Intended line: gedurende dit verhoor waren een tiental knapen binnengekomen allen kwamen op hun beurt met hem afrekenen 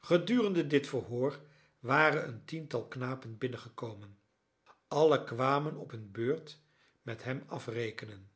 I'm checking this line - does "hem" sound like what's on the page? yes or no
yes